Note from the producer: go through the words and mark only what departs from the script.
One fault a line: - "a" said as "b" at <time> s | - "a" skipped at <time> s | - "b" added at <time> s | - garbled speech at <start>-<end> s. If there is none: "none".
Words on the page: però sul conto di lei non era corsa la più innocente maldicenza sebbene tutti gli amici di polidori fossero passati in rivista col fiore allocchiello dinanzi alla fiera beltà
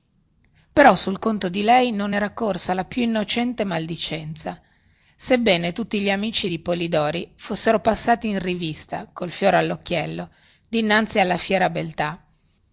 none